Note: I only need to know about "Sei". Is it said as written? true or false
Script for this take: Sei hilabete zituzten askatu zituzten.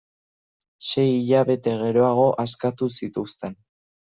true